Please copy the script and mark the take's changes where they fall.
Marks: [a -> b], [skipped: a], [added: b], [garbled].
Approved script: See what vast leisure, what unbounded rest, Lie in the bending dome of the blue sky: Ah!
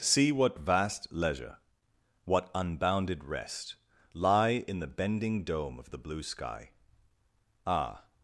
See what vast leisure, what unbounded rest, Lie in the bending dome of the blue sky: Ah!